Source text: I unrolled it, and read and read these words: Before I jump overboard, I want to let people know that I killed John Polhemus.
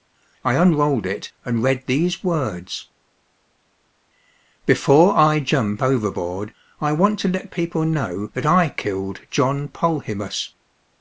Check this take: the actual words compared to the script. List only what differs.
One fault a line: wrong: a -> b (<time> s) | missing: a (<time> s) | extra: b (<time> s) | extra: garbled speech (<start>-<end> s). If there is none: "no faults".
missing: and read (1.9 s)